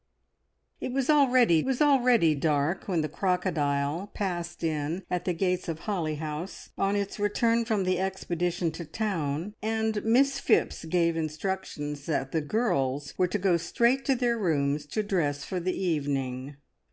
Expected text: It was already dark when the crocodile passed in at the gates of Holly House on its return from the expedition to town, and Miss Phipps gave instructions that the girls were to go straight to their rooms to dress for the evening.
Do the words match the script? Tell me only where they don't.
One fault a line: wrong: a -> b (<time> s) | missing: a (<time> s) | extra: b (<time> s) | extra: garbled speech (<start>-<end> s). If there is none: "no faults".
extra: was already (1.6 s)